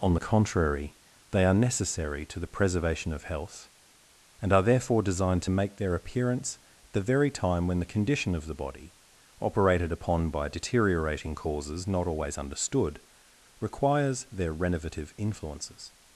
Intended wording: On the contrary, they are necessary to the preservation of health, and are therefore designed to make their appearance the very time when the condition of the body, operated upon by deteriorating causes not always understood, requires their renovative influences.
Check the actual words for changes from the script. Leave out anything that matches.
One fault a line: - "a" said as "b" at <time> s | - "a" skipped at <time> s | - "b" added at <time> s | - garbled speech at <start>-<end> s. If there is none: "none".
none